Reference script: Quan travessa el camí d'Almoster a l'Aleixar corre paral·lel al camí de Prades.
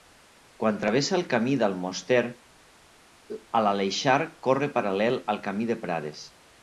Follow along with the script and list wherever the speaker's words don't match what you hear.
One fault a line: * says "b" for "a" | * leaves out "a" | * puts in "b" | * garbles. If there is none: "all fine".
all fine